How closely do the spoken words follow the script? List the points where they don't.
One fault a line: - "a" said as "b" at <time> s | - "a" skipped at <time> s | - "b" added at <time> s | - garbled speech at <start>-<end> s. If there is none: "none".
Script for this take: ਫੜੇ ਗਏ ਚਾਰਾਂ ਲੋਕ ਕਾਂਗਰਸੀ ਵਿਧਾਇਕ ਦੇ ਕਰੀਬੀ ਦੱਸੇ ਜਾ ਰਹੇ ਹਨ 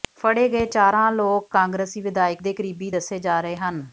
none